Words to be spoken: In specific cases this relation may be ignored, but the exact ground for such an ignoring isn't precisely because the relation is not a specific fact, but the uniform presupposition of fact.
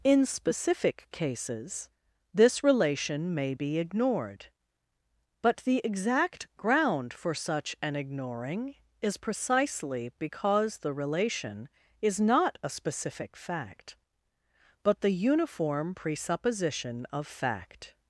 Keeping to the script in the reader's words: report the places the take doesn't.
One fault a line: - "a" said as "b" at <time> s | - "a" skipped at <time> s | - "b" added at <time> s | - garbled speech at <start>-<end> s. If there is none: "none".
- "isn't" said as "is" at 9.0 s